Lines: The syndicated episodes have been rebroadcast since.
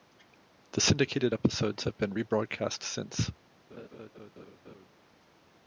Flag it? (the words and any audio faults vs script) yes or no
yes